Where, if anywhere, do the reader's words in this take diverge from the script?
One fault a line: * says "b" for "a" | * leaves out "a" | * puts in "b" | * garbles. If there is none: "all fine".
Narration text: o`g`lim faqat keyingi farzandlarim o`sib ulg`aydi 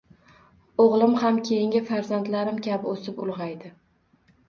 * says "ham" for "faqat"
* puts in "kabi"